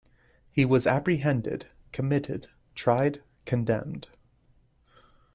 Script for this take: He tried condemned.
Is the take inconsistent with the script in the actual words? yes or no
yes